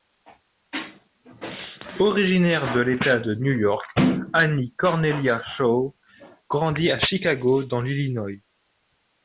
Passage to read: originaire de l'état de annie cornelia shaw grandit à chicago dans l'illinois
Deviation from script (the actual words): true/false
true